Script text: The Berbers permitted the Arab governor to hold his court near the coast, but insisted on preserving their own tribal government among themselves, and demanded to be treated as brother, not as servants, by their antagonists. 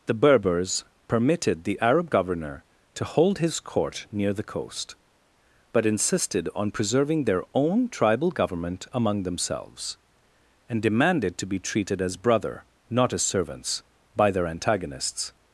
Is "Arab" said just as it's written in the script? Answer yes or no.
yes